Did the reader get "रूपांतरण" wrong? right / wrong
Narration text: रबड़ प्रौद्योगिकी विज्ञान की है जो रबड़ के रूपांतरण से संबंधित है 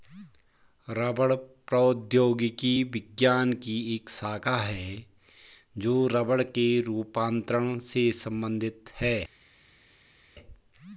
right